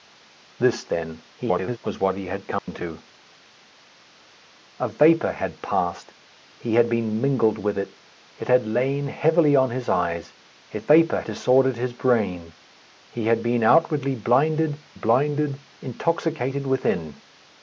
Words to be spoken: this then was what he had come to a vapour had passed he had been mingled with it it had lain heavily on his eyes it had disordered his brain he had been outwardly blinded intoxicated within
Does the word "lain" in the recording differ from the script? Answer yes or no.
no